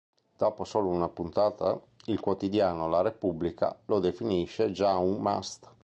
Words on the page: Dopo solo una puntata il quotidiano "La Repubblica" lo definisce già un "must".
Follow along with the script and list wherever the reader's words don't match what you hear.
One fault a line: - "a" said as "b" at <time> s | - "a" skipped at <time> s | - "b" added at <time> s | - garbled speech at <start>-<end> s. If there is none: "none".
none